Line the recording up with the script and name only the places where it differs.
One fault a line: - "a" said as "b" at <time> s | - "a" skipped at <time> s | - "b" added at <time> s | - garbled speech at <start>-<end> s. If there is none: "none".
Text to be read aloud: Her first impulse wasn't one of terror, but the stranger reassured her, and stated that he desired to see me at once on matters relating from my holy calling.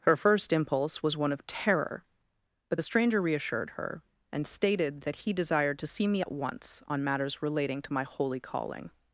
- "wasn't" said as "was" at 1.0 s
- "from" said as "to" at 7.8 s